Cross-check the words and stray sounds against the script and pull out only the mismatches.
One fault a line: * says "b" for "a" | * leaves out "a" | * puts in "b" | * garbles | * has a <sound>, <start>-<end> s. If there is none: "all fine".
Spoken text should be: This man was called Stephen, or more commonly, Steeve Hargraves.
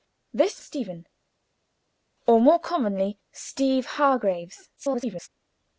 * leaves out "man was called"
* garbles